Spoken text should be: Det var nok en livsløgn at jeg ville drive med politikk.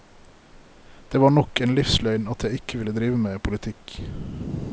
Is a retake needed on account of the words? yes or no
yes